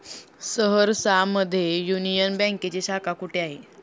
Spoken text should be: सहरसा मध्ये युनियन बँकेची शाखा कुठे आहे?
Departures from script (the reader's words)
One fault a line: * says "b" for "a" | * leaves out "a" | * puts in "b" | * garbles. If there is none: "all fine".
all fine